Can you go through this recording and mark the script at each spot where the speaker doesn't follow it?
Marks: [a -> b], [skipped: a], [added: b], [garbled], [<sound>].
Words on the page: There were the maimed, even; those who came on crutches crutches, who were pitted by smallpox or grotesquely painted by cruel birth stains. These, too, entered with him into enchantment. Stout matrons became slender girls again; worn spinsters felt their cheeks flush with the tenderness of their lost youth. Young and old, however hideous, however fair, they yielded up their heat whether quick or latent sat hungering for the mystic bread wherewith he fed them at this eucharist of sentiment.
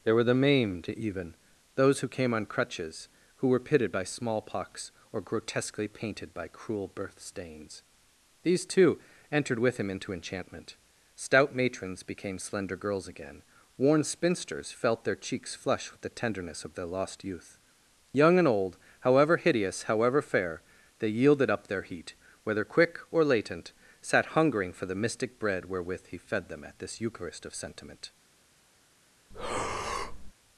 There were the maimed, even; those who came on crutches [skipped: crutches,] who were pitted by smallpox or grotesquely painted by cruel birth stains. These, too, entered with him into enchantment. Stout matrons became slender girls again; worn spinsters felt their cheeks flush with the tenderness of their lost youth. Young and old, however hideous, however fair, they yielded up their heat whether quick or latent sat hungering for the mystic bread wherewith he fed them at this eucharist of sentiment. [breath]